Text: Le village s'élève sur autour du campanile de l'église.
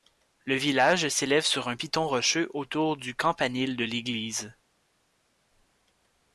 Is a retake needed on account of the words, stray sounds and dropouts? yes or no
yes